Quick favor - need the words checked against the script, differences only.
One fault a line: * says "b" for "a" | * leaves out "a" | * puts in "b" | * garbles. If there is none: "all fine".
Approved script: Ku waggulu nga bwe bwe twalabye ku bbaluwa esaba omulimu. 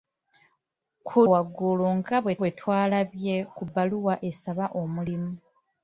all fine